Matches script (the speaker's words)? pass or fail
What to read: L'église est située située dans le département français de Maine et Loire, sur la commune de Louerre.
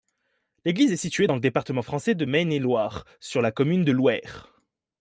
fail